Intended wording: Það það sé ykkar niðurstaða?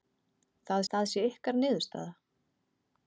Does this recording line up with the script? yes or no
yes